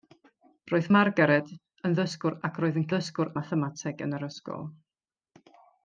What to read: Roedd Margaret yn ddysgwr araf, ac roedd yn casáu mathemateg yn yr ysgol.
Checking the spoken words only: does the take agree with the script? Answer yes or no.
no